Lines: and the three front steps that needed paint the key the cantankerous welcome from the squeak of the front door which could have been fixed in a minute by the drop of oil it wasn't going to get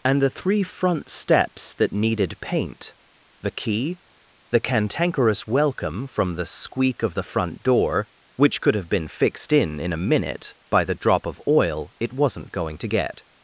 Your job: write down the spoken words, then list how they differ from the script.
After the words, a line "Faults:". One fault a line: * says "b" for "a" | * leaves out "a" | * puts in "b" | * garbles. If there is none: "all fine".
and the three front steps that needed paint the key the cantankerous welcome from the squeak of the front door which could have been fixed in in a minute by the drop of oil it wasn't going to get
Faults:
* puts in "in"